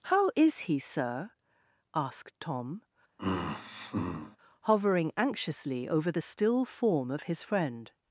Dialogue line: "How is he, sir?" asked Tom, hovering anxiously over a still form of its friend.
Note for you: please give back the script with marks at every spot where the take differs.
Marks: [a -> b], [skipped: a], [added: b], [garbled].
"How is he, sir?" asked Tom, hovering anxiously over [a -> the] still form of [its -> his] friend.